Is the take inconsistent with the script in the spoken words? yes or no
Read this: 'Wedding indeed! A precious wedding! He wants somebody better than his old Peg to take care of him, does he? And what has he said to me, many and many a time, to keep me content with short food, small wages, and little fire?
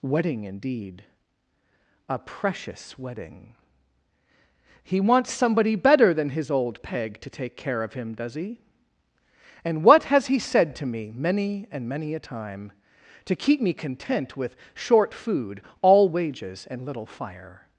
yes